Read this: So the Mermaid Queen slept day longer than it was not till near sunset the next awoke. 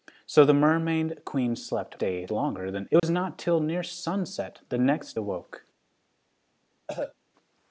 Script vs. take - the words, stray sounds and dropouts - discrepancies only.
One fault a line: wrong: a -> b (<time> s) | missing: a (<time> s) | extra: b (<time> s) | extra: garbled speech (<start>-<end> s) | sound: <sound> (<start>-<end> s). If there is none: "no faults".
sound: dropout (3.0-3.0 s)
sound: cough (6.9-7.2 s)